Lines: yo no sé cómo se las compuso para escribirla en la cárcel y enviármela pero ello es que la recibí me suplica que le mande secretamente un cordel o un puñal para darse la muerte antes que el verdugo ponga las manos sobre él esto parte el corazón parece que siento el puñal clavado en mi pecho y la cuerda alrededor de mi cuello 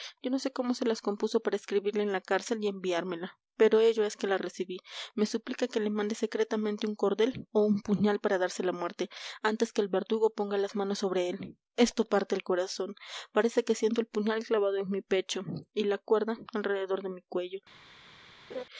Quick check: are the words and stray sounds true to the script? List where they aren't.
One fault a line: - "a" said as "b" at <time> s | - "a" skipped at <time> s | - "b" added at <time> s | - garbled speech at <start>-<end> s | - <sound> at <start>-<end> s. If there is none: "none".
- laugh at 18.5-18.6 s